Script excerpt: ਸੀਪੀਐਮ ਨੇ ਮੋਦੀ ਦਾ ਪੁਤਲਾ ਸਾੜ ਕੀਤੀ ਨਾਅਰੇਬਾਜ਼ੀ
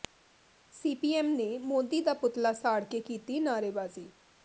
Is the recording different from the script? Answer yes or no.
yes